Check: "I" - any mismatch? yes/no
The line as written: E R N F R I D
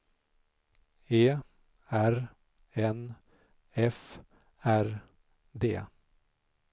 yes